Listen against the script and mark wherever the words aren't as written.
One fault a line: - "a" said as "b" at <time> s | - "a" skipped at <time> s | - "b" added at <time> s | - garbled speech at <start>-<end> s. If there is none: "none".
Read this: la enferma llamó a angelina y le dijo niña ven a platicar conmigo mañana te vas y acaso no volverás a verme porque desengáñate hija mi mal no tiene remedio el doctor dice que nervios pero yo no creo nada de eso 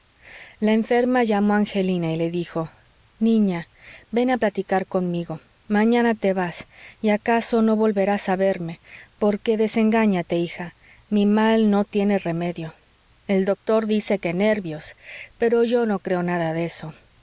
none